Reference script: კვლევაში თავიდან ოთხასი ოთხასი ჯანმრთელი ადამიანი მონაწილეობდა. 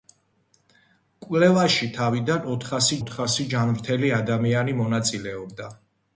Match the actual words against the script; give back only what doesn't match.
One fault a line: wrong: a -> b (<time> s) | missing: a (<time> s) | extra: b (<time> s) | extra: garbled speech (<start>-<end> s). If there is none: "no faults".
no faults